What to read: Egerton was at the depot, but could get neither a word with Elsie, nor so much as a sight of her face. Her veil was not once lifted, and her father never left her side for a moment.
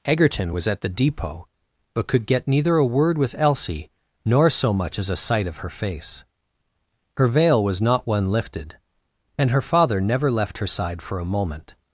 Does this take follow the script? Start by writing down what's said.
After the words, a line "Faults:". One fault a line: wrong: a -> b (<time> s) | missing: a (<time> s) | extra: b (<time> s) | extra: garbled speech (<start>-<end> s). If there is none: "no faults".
Egerton was at the depot, but could get neither a word with Elsie, nor so much as a sight of her face. Her veil was not one lifted, and her father never left her side for a moment.
Faults:
wrong: once -> one (8.1 s)